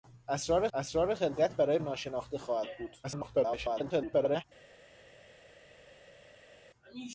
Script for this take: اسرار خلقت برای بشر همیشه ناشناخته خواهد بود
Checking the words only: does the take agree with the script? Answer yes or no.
no